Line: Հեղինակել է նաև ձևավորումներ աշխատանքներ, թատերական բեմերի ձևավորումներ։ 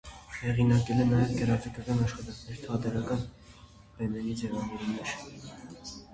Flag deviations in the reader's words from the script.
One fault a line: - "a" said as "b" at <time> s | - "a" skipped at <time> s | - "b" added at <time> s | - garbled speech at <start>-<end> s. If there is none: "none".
- "ձևավորումներ" said as "գրաֆիկական" at 1.4 s